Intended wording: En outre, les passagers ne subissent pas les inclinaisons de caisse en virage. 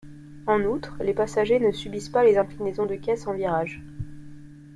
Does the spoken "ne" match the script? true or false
true